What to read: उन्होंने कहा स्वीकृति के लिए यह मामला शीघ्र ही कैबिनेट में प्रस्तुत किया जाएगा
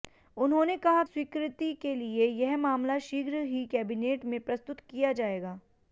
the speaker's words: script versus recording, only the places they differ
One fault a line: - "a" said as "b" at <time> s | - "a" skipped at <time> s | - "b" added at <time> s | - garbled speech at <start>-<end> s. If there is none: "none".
none